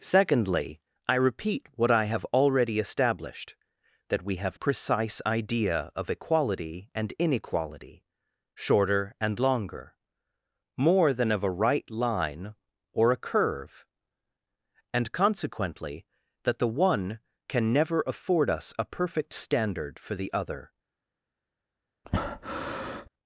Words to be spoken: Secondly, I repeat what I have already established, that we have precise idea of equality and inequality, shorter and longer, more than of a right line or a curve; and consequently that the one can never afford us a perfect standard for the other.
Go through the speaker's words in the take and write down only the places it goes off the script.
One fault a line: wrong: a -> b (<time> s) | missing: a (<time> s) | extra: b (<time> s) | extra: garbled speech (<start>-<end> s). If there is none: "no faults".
no faults